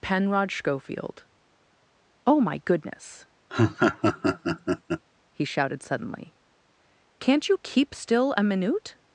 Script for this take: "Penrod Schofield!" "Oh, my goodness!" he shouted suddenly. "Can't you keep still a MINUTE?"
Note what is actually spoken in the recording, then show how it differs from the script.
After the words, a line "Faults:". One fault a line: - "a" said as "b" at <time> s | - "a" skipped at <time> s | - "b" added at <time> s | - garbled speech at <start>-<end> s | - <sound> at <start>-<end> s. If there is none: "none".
"Penrod Schofield!" "Oh, my goodness!" he shouted suddenly. "Can't you keep still a MINUTE?"
Faults:
- laugh at 3.5-5.0 s